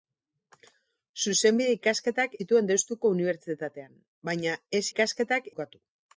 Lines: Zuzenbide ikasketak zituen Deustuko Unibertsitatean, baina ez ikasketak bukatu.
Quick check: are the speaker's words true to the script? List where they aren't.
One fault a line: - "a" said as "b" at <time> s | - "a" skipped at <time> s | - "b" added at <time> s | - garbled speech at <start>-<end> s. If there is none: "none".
none